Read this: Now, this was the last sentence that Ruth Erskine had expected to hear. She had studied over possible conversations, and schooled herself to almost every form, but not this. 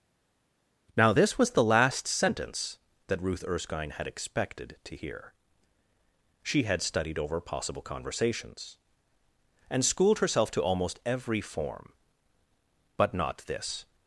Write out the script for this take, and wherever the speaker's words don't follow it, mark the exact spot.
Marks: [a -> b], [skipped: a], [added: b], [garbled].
Now, this was the last sentence that Ruth Erskine had expected to hear. She had studied over possible conversations, and schooled herself to almost every form, but not this.